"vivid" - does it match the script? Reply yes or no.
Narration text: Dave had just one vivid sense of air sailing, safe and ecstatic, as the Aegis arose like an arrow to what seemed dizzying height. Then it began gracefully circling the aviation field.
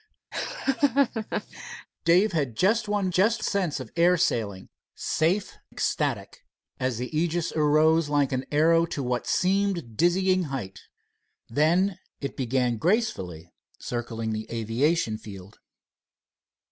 no